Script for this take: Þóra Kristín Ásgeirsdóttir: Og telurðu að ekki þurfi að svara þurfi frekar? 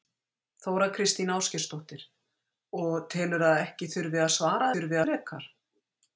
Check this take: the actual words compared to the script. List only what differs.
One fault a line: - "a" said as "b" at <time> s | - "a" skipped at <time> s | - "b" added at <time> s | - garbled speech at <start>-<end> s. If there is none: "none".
none